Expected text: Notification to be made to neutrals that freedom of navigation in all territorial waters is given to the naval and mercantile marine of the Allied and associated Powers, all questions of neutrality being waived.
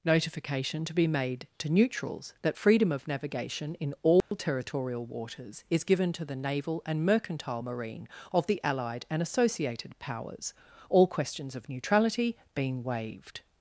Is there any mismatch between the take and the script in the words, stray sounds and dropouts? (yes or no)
yes